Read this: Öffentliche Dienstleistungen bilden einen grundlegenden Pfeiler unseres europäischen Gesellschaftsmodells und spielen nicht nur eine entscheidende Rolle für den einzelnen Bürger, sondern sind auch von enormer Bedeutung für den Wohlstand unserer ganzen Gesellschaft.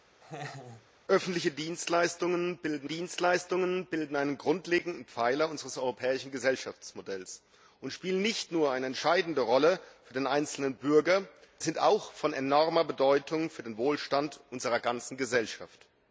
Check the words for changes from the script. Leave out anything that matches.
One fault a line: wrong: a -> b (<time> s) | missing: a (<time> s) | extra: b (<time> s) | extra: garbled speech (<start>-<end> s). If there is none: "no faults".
extra: Dienstleistungen bilden (2.8 s)
missing: sondern (11.3 s)